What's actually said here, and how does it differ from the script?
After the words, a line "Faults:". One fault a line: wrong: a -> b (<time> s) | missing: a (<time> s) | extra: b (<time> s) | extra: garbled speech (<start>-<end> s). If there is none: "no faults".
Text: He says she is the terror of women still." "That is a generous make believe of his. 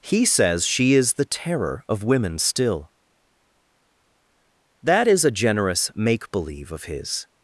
He says she is the terror of women still." "That is a generous make believe of his.
Faults:
no faults